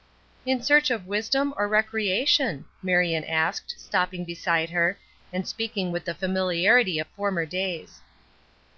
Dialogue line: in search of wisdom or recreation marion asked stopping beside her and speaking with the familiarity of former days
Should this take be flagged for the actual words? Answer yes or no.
no